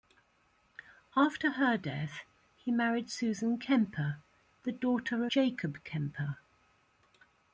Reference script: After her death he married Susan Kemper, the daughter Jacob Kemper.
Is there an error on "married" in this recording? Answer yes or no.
no